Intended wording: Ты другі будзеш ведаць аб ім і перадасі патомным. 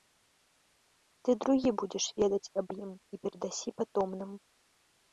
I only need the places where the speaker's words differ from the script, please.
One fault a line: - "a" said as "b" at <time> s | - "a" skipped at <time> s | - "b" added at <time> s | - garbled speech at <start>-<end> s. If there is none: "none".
none